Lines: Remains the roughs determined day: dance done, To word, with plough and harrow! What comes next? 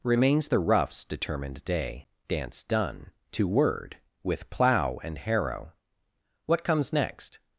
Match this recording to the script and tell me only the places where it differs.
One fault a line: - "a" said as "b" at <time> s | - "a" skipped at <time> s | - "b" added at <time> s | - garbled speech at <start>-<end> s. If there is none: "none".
none